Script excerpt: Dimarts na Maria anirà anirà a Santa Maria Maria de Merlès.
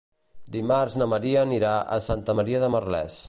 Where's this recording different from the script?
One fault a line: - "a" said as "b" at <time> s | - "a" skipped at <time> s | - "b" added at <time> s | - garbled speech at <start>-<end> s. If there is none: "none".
- "anirà" skipped at 1.8 s
- "Maria" skipped at 2.6 s